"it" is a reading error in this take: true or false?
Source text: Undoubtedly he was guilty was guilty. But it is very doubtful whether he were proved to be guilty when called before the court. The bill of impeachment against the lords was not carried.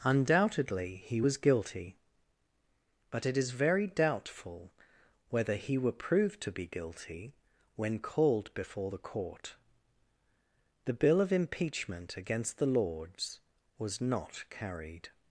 false